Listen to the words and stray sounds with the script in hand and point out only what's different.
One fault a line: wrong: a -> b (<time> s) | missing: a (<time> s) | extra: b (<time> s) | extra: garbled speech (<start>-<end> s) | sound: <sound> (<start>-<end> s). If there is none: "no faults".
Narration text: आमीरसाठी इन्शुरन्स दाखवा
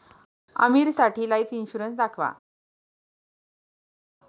extra: लाइफ (1.3 s)